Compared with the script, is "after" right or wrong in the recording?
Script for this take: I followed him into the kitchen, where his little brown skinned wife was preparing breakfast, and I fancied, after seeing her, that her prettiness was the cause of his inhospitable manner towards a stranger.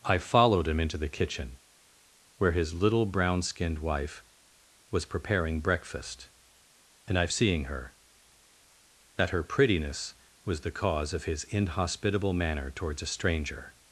wrong